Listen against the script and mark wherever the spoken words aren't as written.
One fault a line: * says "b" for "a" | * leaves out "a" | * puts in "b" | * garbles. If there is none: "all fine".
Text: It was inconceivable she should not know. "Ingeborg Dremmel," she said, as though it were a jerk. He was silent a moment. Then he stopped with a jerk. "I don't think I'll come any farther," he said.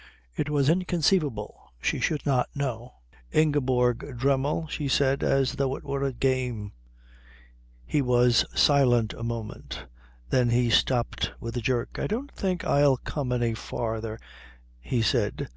* says "game" for "jerk"